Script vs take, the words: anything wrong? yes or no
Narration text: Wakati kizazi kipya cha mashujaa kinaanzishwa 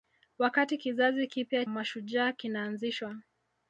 yes